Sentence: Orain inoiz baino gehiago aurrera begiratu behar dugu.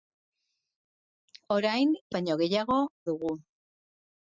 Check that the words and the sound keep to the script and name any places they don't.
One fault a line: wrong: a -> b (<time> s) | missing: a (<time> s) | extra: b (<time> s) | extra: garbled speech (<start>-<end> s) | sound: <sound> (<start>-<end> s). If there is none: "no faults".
missing: inoiz (1.9 s)
missing: aurrera begiratu behar (2.8 s)